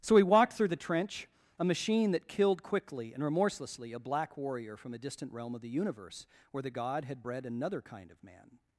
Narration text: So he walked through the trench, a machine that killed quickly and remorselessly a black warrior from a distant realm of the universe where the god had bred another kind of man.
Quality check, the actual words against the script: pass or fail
pass